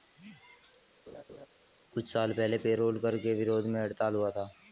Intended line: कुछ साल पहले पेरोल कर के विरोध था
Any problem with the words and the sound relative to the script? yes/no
yes